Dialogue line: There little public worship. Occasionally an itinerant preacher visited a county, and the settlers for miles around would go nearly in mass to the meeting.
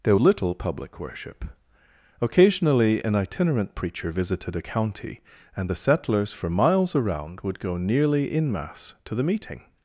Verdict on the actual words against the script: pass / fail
pass